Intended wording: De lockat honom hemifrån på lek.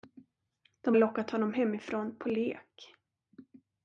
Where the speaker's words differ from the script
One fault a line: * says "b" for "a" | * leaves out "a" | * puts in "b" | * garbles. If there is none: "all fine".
all fine